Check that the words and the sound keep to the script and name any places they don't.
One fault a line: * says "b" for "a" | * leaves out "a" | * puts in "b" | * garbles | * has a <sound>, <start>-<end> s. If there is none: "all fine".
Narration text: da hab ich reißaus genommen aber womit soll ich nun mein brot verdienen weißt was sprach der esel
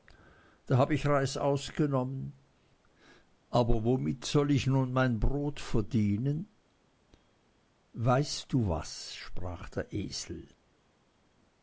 * puts in "du"